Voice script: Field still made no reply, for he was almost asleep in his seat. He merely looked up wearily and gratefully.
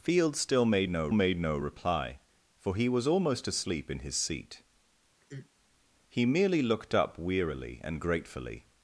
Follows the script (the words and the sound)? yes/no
no